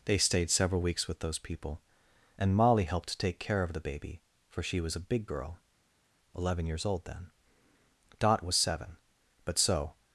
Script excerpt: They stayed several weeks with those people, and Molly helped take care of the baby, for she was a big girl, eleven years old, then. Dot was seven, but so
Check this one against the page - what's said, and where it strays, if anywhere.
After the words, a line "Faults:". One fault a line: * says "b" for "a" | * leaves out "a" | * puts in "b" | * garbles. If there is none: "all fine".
They stayed several weeks with those people, and Molly helped take care of the baby, for she was a big girl, eleven years old, then. Dot was seven, but so
Faults:
all fine